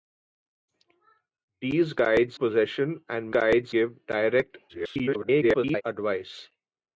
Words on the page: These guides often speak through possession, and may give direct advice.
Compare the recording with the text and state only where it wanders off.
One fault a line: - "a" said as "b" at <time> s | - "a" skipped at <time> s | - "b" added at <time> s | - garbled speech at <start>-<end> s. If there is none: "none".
- "often speak through" skipped at 2.4 s
- "may" said as "guides" at 3.3 s
- garbled speech at 4.7-5.8 s